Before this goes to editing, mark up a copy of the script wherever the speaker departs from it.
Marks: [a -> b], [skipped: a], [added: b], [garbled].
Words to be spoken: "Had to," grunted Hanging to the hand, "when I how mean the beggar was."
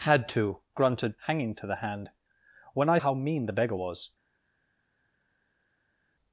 "Had to," grunted Hanging to the hand, "when I how mean the beggar was."